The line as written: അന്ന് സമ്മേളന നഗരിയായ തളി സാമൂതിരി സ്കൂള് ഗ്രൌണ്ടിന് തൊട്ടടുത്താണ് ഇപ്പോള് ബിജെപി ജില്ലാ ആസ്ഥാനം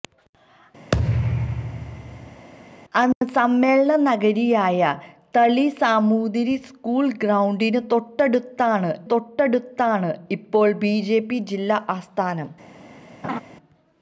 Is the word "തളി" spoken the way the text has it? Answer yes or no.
yes